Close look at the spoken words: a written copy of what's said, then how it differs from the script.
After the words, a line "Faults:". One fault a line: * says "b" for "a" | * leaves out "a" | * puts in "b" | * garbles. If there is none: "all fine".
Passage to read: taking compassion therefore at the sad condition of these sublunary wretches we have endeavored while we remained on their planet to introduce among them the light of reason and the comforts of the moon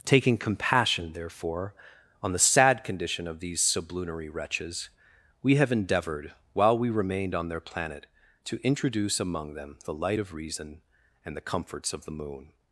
taking compassion therefore on the sad condition of these sublunary wretches we have endeavored while we remained on their planet to introduce among them the light of reason and the comforts of the moon
Faults:
* says "on" for "at"